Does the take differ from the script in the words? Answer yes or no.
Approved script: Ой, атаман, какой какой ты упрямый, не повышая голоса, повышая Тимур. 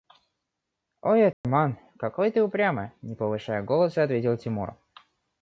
yes